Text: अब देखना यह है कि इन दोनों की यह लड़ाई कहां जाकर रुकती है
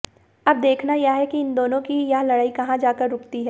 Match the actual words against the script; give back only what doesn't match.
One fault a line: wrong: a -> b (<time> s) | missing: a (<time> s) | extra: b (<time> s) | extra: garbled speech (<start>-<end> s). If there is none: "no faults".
no faults